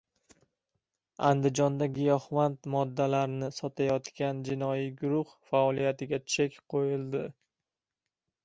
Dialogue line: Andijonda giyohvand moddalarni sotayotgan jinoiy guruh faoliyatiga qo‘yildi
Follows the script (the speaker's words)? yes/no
no